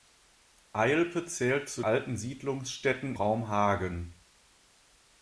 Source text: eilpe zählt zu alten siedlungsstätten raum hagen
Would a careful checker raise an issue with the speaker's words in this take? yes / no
no